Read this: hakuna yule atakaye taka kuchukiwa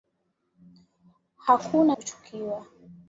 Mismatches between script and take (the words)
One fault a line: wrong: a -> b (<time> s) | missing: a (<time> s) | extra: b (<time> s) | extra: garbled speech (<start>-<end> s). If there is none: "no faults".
missing: yule atakaye taka (2.0 s)